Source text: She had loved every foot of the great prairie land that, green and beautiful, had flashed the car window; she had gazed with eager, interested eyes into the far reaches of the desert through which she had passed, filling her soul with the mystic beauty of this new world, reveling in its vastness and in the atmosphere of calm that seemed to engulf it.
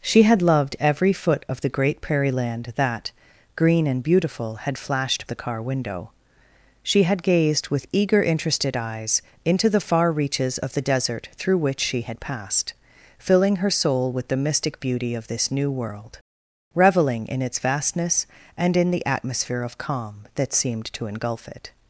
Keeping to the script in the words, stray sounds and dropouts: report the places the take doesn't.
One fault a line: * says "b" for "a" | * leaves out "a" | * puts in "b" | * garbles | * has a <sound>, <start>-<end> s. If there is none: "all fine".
all fine